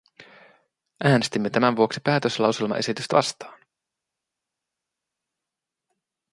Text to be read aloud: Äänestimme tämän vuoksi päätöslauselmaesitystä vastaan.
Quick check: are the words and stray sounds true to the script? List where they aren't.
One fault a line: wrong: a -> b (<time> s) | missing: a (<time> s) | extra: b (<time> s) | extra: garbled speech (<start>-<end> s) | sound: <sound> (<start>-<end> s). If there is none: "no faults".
no faults